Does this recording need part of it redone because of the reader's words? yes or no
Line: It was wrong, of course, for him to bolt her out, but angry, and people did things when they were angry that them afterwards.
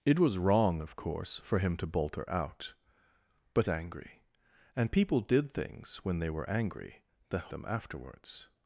no